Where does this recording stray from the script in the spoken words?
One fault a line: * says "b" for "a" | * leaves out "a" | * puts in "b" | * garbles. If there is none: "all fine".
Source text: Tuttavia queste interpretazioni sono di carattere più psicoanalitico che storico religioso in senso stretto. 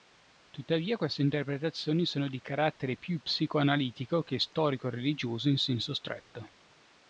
all fine